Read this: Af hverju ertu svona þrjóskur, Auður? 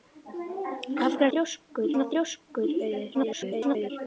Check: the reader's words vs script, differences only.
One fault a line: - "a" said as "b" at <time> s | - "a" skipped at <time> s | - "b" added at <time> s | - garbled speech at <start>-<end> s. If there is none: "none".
- "ertu" said as "þrjóskur" at 1.3 s
- garbled speech at 3.1-3.9 s